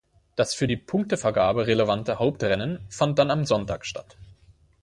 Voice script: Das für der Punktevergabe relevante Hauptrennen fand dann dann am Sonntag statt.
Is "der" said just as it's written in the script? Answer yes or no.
no